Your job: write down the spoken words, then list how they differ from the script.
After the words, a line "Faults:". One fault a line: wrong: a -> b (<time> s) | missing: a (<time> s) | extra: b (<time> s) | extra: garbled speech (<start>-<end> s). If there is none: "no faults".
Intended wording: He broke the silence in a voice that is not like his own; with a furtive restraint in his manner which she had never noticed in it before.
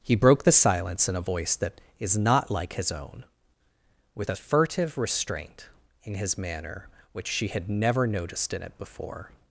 He broke the silence in a voice that is not like his own; with a furtive restraint in his manner which she had never noticed in it before.
Faults:
no faults